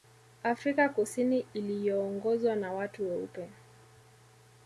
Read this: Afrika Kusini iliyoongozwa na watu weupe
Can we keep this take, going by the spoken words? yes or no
yes